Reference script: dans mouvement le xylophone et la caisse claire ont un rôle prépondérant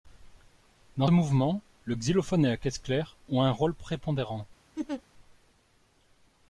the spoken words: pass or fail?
pass